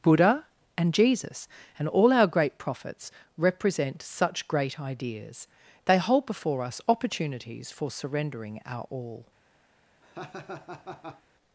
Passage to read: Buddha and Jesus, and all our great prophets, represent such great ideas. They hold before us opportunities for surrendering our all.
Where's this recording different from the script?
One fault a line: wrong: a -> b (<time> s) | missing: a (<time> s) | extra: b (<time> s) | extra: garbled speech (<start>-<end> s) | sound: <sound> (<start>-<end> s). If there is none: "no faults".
sound: laugh (10.0-11.2 s)